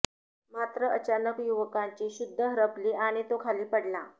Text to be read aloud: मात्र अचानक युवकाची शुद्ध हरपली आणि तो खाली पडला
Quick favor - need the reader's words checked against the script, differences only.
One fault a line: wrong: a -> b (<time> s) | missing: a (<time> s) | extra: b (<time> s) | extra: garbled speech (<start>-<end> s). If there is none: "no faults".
no faults